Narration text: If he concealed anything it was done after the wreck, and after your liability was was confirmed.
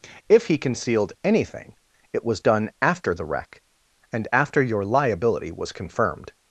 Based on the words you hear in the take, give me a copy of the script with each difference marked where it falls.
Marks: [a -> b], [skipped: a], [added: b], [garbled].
If he concealed anything it was done after the wreck, and after your liability was [skipped: was] confirmed.